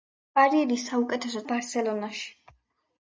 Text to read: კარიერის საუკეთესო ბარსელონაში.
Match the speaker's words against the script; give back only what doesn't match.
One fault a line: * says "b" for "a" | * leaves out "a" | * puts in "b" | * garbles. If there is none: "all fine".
all fine